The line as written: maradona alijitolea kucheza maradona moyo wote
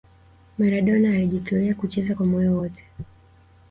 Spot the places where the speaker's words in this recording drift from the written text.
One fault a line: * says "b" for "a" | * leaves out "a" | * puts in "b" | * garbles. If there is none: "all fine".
* says "kwa" for "maradona"